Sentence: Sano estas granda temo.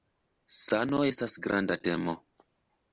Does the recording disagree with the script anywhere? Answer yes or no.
no